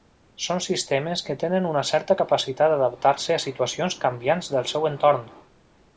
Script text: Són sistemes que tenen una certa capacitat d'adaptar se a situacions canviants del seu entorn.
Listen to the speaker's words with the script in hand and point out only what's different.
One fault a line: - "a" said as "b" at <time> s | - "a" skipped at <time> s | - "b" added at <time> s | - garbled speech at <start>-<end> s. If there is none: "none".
none